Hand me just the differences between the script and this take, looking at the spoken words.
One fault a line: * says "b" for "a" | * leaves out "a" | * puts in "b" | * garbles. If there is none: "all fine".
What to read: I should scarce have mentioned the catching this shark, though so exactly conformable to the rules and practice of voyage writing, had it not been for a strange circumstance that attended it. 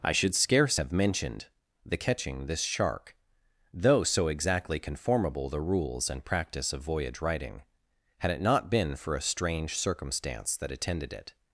* leaves out "to"